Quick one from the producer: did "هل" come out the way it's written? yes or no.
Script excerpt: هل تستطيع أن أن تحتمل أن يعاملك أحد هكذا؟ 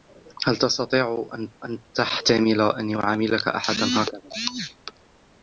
yes